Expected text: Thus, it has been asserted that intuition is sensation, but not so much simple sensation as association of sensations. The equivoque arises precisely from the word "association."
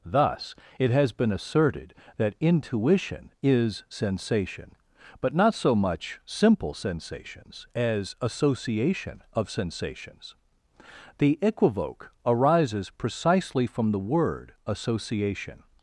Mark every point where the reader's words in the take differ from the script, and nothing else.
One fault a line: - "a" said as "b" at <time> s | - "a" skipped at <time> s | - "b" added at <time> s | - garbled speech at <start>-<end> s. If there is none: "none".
- "sensation" said as "sensations" at 6.7 s